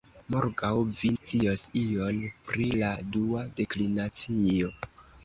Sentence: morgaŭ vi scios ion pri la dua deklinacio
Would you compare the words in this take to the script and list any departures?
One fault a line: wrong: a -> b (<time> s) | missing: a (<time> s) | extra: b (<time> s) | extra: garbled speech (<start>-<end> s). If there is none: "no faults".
no faults